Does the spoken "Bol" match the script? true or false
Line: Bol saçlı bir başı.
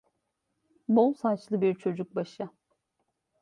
true